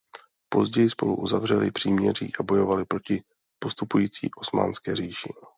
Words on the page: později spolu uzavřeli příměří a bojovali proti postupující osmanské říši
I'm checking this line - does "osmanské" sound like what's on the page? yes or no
yes